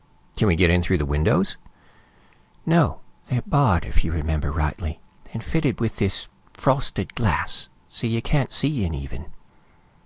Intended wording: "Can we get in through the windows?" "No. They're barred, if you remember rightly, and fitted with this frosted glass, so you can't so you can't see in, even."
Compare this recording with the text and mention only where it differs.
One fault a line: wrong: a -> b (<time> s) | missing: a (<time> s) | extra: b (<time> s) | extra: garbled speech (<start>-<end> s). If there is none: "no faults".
missing: so you can't (8.5 s)